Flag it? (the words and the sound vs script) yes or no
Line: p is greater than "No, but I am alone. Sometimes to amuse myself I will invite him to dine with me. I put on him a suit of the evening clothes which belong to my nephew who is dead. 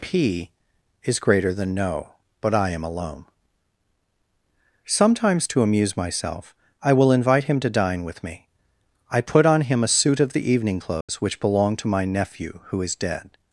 yes